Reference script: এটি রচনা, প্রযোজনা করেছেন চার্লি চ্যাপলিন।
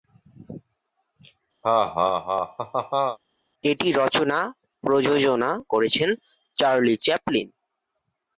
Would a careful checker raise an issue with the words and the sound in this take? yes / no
yes